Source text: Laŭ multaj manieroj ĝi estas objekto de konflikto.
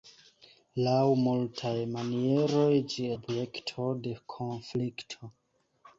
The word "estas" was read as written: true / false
false